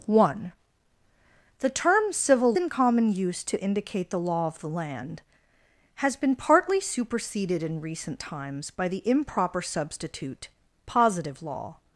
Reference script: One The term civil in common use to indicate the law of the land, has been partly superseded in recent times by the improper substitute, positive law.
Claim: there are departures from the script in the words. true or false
false